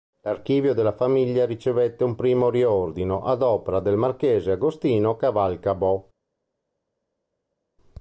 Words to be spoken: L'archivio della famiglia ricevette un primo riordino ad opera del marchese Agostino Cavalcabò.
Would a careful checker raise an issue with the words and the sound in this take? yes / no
no